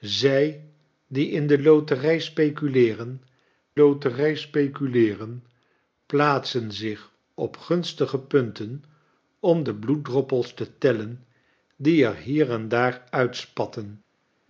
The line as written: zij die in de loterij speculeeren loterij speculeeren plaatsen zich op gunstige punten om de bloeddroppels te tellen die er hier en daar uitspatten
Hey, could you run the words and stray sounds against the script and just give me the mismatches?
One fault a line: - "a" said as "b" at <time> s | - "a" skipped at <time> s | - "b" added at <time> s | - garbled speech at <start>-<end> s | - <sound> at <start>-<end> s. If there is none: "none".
none